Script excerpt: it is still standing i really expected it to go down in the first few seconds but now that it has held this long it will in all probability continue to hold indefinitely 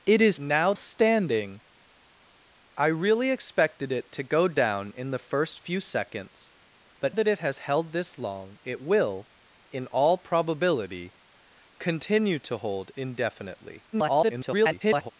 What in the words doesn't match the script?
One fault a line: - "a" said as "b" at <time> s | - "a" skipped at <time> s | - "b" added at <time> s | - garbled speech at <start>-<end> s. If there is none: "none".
- "still" said as "now" at 0.4 s
- "now" skipped at 7.2 s
- garbled speech at 13.9-15.1 s